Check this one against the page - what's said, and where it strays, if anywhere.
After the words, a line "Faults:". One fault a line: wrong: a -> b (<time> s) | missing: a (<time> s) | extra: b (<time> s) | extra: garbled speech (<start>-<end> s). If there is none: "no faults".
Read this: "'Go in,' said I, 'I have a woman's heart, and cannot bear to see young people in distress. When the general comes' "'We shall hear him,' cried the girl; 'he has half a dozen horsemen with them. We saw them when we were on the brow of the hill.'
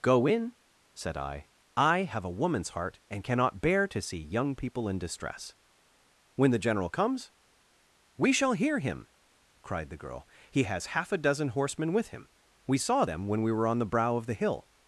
"'Go in,' said I, 'I have a woman's heart, and cannot bear to see young people in distress. When the general comes' "'We shall hear him,' cried the girl; 'he has half a dozen horsemen with him. We saw them when we were on the brow of the hill.'
Faults:
wrong: them -> him (12.1 s)